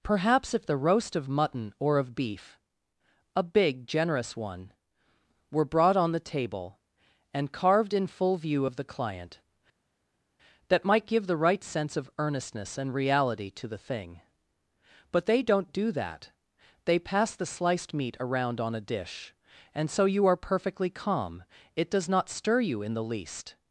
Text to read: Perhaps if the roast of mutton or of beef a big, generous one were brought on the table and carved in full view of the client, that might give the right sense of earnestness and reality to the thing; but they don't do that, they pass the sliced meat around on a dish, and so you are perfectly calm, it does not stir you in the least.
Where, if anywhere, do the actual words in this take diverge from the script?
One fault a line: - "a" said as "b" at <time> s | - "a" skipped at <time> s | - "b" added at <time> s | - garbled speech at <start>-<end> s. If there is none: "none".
none